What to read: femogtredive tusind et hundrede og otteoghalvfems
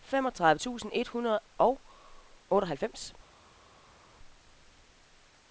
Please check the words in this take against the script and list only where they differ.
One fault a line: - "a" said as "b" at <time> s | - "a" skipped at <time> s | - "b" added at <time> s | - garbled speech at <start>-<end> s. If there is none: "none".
none